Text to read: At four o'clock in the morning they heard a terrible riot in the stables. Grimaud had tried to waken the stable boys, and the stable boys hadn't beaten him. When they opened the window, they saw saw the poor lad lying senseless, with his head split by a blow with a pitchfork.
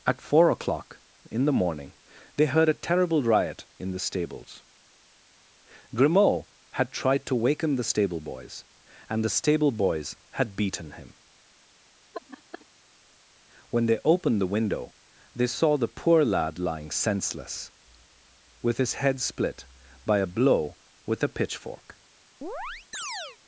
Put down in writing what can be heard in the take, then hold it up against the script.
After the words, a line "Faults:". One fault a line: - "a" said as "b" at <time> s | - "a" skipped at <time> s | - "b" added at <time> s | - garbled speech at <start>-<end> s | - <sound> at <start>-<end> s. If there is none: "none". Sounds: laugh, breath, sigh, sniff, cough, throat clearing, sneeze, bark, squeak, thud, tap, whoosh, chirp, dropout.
At four o'clock in the morning they heard a terrible riot in the stables. Grimaud had tried to waken the stable boys, and the stable boys had beaten him. When they opened the window, they saw the poor lad lying senseless, with his head split by a blow with a pitchfork.
Faults:
- "hadn't" said as "had" at 10.3 s
- laugh at 12.1-12.7 s
- "saw" skipped at 15.8 s
- chirp at 22.4-23.4 s